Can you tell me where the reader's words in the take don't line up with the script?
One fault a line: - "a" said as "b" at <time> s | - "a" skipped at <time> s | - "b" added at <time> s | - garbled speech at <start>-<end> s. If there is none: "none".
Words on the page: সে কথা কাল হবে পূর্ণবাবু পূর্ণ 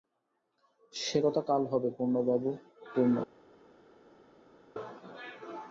none